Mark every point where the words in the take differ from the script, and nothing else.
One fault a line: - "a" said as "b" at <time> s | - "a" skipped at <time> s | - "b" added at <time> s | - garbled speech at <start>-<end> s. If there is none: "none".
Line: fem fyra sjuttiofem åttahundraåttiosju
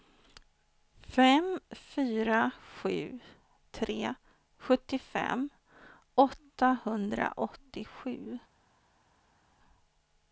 - "sju tre" added at 2.8 s